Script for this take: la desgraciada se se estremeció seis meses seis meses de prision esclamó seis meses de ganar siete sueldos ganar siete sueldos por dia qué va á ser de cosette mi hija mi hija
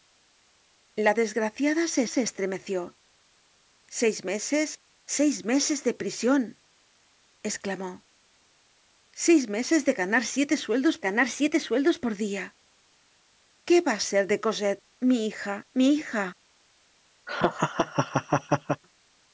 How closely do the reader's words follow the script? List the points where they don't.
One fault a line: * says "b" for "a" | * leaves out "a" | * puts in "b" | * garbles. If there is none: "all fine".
all fine